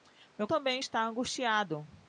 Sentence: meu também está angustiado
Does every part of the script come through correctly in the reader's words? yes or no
yes